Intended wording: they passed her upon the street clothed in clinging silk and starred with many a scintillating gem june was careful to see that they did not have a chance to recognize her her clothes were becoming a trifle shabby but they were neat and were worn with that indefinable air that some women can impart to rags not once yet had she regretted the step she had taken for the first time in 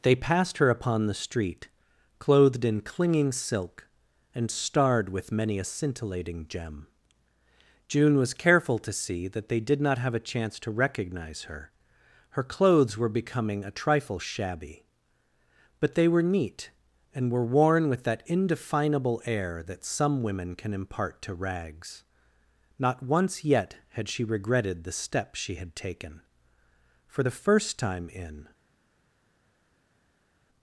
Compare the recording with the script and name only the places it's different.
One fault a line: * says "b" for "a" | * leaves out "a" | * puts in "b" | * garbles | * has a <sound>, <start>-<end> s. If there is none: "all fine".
all fine